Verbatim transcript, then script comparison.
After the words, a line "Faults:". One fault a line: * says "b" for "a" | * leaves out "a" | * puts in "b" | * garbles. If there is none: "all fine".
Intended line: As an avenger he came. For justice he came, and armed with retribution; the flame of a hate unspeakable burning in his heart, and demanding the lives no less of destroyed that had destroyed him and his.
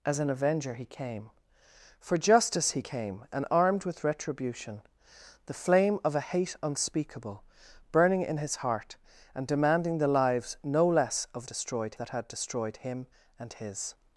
As an avenger he came. For justice he came, and armed with retribution; the flame of a hate unspeakable burning in his heart, and demanding the lives no less of destroyed that had destroyed him and his.
Faults:
all fine